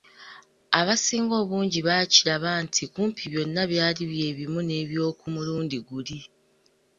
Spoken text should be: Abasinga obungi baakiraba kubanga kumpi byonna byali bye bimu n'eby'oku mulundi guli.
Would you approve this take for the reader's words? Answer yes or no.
no